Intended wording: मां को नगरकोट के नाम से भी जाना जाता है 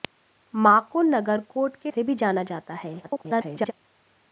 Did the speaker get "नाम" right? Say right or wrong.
wrong